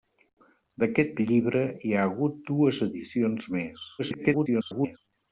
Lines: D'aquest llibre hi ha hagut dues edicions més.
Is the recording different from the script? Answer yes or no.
yes